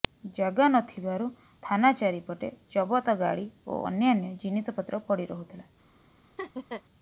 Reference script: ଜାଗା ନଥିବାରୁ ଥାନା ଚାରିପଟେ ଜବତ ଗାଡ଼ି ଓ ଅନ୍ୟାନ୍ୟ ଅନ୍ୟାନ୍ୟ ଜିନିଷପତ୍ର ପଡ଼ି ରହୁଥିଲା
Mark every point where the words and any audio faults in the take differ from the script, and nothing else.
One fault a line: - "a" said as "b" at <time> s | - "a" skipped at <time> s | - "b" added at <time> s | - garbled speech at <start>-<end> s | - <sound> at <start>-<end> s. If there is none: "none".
- "ଅନ୍ୟାନ୍ୟ" skipped at 4.3 s
- laugh at 6.4-6.8 s